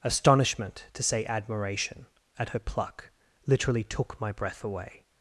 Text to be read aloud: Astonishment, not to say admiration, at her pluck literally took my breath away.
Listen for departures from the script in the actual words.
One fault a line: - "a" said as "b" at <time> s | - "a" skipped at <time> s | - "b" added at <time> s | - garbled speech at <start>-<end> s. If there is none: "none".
- "not" skipped at 0.9 s